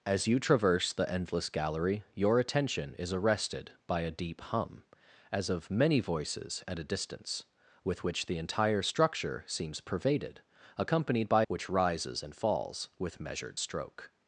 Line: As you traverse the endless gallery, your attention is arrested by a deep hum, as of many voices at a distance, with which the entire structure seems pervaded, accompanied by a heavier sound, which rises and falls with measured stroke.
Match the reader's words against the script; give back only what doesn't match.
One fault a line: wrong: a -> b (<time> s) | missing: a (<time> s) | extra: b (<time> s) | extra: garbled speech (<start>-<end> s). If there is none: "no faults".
missing: a heavier sound (11.4 s)